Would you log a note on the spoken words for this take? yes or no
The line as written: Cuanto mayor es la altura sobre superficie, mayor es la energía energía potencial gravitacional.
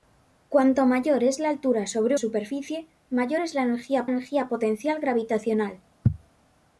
no